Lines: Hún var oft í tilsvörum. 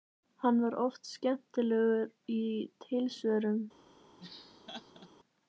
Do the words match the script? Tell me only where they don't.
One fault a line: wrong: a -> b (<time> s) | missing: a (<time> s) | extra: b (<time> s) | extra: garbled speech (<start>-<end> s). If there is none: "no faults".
wrong: Hún -> Hann (0.4 s)
extra: skemmtilegur (1.1 s)